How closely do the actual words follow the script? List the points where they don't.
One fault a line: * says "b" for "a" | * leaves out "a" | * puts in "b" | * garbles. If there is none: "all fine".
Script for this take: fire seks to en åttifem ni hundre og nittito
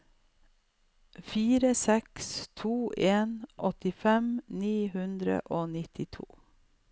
all fine